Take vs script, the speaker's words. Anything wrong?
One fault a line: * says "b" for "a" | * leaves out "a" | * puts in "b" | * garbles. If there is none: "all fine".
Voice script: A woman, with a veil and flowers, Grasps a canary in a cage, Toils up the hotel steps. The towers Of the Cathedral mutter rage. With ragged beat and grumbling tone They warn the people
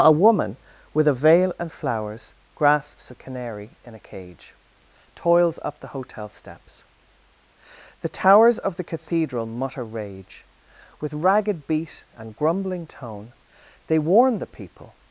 all fine